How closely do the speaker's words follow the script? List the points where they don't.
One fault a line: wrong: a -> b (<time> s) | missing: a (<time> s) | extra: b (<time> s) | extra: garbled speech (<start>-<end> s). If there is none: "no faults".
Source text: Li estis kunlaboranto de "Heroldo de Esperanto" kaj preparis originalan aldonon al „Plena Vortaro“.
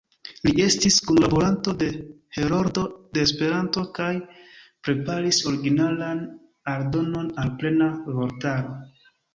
no faults